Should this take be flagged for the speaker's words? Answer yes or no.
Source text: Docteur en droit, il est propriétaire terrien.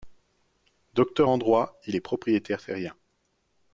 no